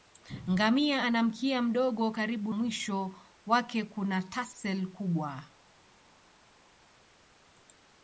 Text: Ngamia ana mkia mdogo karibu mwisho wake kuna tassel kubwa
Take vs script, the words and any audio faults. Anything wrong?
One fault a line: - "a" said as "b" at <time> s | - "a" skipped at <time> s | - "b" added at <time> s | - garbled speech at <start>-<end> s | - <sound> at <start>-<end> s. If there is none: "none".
none